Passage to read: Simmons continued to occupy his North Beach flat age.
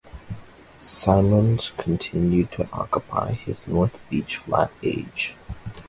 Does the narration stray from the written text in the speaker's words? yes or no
no